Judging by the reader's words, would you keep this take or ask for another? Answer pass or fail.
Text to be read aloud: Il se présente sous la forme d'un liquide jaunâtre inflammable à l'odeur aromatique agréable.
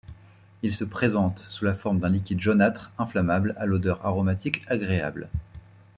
pass